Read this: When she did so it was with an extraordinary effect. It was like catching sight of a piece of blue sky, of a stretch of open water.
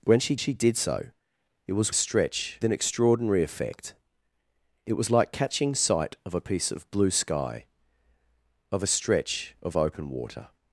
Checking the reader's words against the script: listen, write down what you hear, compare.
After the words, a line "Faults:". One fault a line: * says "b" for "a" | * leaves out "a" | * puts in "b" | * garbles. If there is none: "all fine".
When she she did so it was stretch an extraordinary effect. It was like catching sight of a piece of blue sky, of a stretch of open water.
Faults:
* puts in "she"
* says "stretch" for "with"